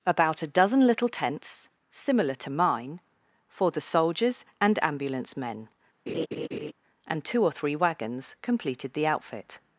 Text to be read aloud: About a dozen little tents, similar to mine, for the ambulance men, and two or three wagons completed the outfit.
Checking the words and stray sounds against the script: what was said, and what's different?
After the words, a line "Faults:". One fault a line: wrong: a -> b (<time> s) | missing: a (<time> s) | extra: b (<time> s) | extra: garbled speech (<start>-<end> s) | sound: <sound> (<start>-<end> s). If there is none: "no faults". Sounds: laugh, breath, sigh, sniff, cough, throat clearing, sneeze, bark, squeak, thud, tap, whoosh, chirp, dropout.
About a dozen little tents, similar to mine, for the soldiers and ambulance men, and two or three wagons completed the outfit.
Faults:
extra: soldiers and (3.8 s)
sound: laugh (6.1-6.7 s)